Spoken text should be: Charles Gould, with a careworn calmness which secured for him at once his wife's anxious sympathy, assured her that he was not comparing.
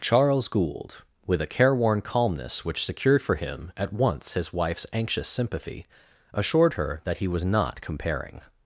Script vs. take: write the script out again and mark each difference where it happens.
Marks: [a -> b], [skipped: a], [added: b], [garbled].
Charles Gould, with a careworn calmness which secured for him at once his wife's anxious sympathy, assured her that he was not comparing.